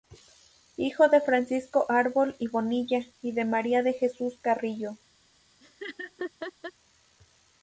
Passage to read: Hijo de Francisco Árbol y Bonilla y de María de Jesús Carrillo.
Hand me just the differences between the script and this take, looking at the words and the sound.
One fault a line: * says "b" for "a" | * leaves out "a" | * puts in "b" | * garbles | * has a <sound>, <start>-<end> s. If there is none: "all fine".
* has a laugh, 5.6-6.7 s